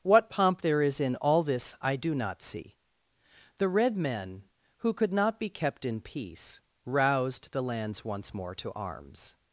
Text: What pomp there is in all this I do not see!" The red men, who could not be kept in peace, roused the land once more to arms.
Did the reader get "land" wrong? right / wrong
wrong